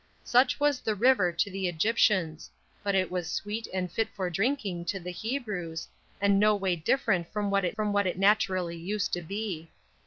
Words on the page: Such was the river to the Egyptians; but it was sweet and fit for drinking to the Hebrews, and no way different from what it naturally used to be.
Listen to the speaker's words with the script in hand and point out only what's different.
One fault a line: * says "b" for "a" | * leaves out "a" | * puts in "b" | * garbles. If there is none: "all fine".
* puts in "from what it"